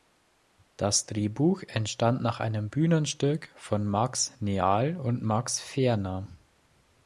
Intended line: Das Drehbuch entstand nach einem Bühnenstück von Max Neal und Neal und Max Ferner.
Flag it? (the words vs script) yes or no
yes